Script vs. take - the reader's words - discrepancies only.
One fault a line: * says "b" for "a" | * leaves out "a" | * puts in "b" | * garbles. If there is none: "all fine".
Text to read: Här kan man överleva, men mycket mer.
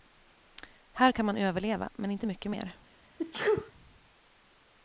* puts in "inte"